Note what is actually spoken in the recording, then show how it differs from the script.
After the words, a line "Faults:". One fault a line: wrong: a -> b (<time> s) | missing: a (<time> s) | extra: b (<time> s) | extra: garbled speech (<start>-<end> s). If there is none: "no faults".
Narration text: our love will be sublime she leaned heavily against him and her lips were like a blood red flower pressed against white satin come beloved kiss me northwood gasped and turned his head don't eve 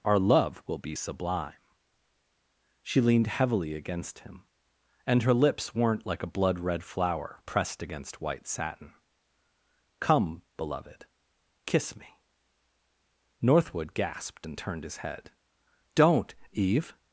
our love will be sublime she leaned heavily against him and her lips weren't like a blood red flower pressed against white satin come beloved kiss me northwood gasped and turned his head don't eve
Faults:
wrong: were -> weren't (5.7 s)